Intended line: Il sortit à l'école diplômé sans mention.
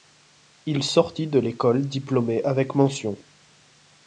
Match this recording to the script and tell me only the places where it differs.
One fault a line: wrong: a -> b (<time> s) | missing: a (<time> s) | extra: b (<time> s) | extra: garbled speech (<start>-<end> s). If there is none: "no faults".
wrong: à -> de (1.3 s)
wrong: sans -> avec (2.4 s)